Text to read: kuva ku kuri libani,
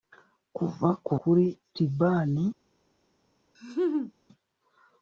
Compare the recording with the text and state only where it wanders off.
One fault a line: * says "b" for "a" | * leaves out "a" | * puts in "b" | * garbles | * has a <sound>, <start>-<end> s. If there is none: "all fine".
* has a laugh, 3.5-4.1 s